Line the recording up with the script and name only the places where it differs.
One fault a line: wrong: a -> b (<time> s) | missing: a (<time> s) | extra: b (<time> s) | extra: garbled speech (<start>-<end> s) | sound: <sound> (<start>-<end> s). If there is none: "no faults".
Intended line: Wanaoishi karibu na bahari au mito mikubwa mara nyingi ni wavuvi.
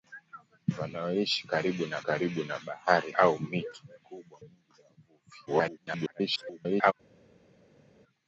extra: karibu na (2.0 s)
missing: mara (4.4 s)
extra: garbled speech (5.5-6.9 s)